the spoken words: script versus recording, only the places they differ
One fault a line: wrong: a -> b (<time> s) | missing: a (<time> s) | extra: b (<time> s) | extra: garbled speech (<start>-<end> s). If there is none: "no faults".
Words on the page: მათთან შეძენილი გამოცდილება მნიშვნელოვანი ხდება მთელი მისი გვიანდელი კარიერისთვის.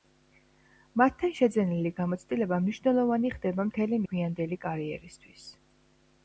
missing: მისი (4.0 s)